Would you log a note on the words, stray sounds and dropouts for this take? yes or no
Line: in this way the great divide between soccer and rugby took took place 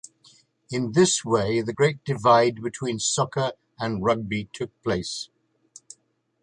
yes